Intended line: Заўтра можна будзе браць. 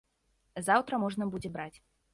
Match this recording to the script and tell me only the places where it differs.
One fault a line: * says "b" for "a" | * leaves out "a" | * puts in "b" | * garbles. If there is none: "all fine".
all fine